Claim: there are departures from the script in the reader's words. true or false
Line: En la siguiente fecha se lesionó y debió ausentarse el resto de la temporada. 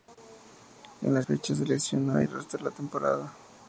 true